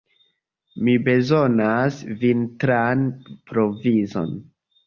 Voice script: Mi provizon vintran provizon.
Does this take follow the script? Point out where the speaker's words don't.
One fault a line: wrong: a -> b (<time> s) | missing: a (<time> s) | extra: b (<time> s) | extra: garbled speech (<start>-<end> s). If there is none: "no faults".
wrong: provizon -> bezonas (1.1 s)